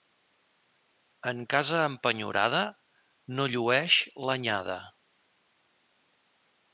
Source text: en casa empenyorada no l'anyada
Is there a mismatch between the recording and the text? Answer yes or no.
yes